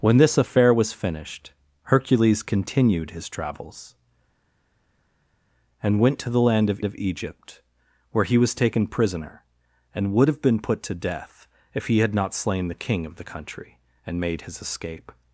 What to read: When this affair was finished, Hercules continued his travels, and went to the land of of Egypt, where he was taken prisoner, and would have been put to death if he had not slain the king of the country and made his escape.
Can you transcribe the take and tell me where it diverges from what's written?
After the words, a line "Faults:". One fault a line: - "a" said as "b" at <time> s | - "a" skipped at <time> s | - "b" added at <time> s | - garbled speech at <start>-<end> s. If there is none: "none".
When this affair was finished, Hercules continued his travels, and went to the land of of Egypt, where he was taken prisoner, and would have been put to death if he had not slain the king of the country and made his escape.
Faults:
none